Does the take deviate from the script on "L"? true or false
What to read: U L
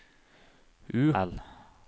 false